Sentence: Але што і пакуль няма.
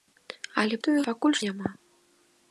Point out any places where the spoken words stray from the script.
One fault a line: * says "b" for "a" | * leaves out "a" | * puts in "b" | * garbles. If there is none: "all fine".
all fine